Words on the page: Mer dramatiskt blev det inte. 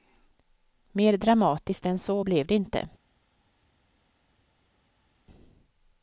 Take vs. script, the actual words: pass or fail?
fail